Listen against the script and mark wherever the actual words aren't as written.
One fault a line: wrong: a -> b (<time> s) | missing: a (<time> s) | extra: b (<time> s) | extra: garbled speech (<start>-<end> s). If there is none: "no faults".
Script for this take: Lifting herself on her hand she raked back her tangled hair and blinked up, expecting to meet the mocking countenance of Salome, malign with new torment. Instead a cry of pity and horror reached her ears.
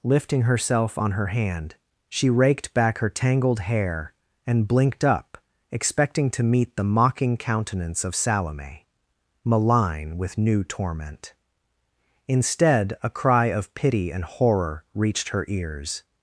no faults